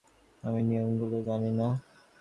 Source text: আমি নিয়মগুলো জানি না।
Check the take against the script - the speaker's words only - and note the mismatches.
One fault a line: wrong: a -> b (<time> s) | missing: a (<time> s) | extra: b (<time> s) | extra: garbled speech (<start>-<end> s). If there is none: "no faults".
no faults